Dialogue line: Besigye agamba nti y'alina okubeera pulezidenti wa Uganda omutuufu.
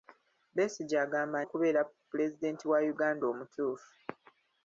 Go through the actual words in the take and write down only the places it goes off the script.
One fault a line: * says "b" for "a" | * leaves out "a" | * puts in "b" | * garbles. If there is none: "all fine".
* leaves out "nti y'alina"